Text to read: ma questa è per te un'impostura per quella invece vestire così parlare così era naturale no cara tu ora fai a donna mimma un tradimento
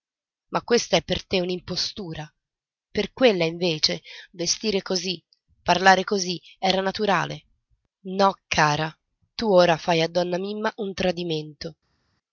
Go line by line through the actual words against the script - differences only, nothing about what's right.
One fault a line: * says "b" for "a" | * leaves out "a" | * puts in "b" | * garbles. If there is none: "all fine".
all fine